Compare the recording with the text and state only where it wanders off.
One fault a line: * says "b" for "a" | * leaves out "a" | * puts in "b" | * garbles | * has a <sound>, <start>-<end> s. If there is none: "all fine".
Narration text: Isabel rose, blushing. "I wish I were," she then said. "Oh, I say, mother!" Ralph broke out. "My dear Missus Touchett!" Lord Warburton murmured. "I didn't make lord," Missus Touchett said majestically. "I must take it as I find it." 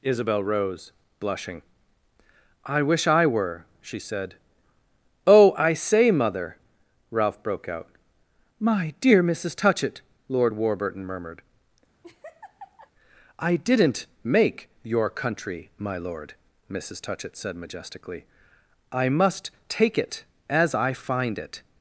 * leaves out "then"
* has a laugh, 12.0-12.9 s
* puts in "your country my"